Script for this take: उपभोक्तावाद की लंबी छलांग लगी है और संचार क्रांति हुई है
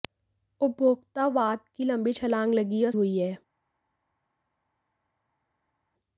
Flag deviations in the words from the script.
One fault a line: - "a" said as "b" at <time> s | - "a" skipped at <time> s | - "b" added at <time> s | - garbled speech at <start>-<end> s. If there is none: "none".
- "संचार क्रांति" skipped at 2.9 s